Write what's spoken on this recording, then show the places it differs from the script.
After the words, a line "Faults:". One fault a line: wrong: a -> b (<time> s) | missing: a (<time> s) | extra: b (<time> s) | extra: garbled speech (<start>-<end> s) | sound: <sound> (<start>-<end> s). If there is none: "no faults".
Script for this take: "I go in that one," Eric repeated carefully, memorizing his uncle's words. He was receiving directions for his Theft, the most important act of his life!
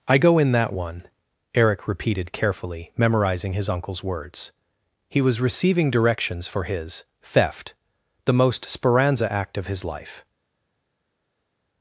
"I go in that one," Eric repeated carefully, memorizing his uncle's words. He was receiving directions for his Theft, the most speranza act of his life!
Faults:
wrong: important -> speranza (8.7 s)